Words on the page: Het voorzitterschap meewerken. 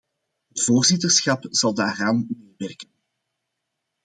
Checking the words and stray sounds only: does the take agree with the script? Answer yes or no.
no